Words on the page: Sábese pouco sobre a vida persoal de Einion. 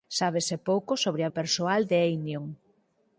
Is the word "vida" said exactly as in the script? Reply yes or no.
no